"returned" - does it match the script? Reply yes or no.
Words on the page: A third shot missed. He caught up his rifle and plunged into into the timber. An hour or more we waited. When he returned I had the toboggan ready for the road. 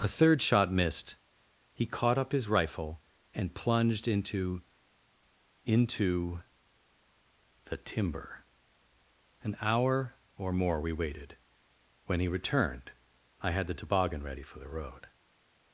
yes